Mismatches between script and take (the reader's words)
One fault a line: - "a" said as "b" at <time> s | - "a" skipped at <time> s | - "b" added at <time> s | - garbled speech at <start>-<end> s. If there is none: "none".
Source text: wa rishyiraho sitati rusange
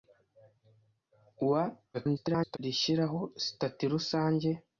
- garbled speech at 1.9-2.6 s